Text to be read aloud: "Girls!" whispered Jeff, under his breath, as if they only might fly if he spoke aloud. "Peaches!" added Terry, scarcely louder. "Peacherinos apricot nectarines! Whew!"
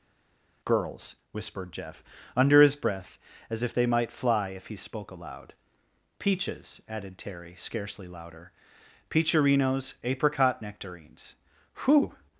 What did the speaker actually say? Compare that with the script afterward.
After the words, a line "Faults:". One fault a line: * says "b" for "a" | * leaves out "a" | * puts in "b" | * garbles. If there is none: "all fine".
"Girls!" whispered Jeff, under his breath, as if they might fly if he spoke aloud. "Peaches!" added Terry, scarcely louder. "Peacherinos apricot nectarines! Whew!"
Faults:
* leaves out "only"